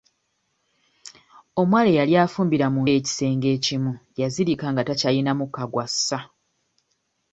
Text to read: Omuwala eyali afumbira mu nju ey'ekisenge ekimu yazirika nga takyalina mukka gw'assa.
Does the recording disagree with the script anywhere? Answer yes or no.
yes